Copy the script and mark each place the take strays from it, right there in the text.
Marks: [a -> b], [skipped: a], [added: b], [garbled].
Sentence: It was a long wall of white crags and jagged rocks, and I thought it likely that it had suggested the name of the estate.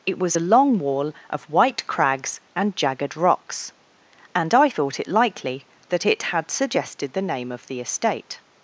It was a long wall of white crags and jagged rocks, and I thought it likely that it had suggested the name of the estate.